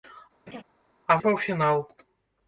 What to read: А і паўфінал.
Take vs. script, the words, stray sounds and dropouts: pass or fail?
fail